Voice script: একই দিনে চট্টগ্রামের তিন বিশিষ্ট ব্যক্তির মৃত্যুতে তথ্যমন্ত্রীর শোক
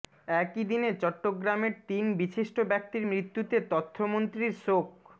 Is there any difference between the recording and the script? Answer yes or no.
no